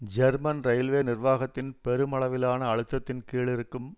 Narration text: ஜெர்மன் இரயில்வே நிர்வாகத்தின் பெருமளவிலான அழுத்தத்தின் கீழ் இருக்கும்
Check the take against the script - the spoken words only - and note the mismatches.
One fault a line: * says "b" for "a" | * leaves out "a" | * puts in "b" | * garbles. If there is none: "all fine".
all fine